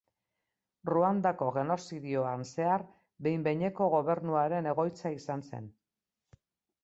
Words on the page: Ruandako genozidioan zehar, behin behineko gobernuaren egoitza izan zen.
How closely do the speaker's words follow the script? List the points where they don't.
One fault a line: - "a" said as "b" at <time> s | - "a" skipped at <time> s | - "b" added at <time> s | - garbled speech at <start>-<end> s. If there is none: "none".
none